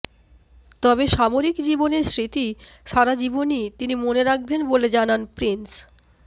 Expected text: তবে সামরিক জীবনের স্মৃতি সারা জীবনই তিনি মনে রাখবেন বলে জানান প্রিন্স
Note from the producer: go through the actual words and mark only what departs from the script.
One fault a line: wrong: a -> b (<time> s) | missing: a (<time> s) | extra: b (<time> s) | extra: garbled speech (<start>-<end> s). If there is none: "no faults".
no faults